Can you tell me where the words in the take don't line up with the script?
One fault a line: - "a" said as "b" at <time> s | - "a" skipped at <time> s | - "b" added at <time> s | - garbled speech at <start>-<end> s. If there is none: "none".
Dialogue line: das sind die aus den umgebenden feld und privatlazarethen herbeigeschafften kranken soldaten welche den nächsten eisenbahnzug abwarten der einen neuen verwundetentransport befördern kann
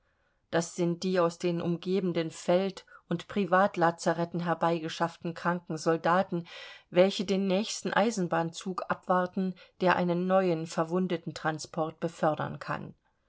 none